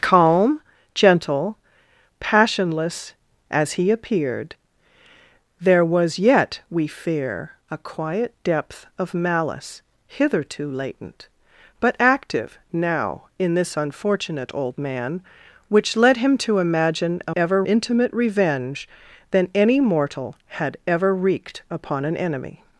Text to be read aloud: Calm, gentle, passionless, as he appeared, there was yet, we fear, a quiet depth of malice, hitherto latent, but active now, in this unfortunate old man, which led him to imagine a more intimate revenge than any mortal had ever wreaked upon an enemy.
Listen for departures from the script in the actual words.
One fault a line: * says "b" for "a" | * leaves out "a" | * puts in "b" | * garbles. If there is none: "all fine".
* says "ever" for "more"